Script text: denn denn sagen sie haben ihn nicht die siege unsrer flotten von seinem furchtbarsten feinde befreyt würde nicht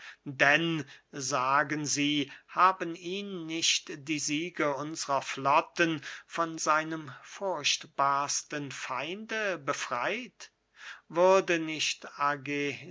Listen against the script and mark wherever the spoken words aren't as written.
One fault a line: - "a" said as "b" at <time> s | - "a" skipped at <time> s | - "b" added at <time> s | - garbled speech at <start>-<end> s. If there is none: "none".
- "denn" skipped at 0.8 s